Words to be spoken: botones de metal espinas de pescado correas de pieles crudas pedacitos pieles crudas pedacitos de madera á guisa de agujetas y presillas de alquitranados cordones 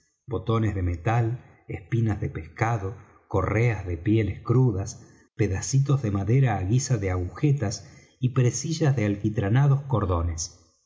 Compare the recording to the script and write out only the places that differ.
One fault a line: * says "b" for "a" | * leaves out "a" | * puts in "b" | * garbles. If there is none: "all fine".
* leaves out "pieles crudas pedacitos"